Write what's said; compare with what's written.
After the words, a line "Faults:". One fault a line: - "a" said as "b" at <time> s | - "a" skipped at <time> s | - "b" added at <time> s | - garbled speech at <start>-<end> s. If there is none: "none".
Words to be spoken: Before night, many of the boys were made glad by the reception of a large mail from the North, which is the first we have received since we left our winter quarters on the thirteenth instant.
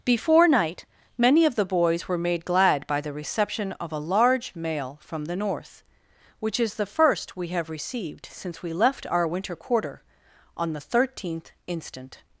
Before night, many of the boys were made glad by the reception of a large mail from the North, which is the first we have received since we left our winter quarter on the thirteenth instant.
Faults:
- "quarters" said as "quarter" at 9.6 s